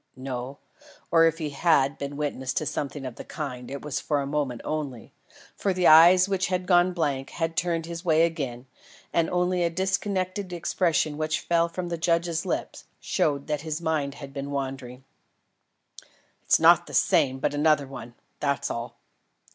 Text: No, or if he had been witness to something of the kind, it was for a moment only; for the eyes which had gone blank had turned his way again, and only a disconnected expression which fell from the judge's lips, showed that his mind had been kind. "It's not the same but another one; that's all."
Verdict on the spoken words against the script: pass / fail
fail